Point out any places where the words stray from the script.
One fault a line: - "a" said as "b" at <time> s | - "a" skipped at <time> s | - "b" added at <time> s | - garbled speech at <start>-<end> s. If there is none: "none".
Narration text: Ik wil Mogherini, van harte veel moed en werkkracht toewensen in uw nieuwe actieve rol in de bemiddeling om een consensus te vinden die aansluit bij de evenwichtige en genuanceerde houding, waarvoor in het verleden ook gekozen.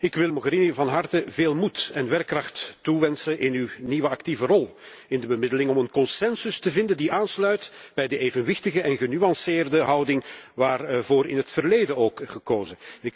none